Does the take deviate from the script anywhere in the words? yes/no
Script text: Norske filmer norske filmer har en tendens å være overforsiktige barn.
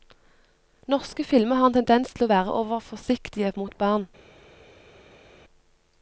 yes